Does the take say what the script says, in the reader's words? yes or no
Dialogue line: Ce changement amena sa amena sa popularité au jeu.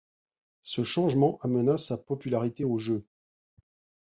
no